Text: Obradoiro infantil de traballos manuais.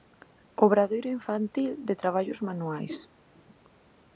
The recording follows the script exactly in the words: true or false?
true